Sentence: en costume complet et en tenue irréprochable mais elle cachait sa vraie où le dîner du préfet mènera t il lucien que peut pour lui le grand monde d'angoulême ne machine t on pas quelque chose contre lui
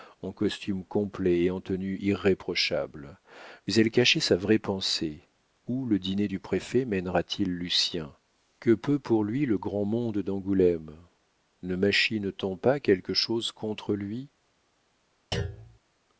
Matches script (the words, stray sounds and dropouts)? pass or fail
fail